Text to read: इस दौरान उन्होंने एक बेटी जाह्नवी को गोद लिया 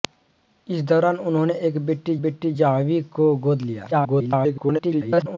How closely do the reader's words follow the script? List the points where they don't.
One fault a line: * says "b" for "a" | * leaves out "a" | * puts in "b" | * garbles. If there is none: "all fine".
* puts in "बेटी"
* garbles